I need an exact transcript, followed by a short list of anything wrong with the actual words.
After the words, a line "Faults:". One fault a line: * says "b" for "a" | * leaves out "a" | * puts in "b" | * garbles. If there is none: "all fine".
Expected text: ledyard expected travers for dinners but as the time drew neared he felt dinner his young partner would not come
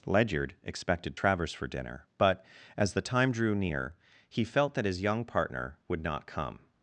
ledyard expected travers for dinner but as the time drew near he felt that his young partner would not come
Faults:
* says "dinner" for "dinners"
* says "near" for "neared"
* says "that" for "dinner"